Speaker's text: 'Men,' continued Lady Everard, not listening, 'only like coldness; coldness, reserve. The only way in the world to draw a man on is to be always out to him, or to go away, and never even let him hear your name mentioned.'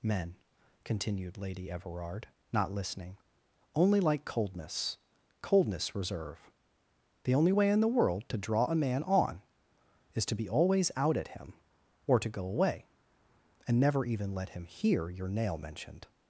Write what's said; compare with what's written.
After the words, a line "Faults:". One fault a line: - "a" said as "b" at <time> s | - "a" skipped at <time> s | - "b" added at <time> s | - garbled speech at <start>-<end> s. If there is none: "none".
'Men,' continued Lady Everard, not listening, 'only like coldness; coldness, reserve. The only way in the world to draw a man on is to be always out at him, or to go away, and never even let him hear your nail mentioned.'
Faults:
- "to" said as "at" at 11.2 s
- "name" said as "nail" at 15.3 s